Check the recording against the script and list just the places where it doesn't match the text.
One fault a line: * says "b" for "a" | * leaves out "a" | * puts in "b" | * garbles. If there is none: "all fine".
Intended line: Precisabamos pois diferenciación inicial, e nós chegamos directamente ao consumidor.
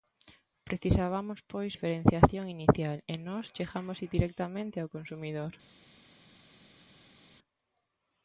all fine